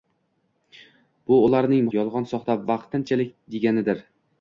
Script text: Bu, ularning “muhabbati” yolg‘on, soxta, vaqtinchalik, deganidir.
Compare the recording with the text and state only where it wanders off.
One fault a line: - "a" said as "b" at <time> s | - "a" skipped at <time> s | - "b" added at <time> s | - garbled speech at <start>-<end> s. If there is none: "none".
- "muhabbati" skipped at 1.9 s